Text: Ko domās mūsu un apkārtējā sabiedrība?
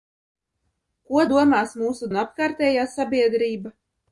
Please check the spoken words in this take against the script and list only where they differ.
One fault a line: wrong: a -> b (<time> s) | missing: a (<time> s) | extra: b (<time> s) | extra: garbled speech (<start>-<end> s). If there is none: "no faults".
no faults